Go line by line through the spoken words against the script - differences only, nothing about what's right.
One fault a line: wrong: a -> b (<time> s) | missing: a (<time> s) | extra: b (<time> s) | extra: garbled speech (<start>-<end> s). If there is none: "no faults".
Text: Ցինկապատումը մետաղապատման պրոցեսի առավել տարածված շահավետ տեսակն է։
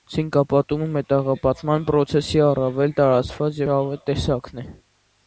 no faults